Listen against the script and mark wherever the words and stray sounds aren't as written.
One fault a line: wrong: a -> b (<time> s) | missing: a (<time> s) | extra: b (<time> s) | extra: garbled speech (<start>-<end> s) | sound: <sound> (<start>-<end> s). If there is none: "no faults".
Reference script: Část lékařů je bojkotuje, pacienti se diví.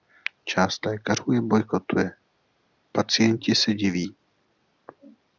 no faults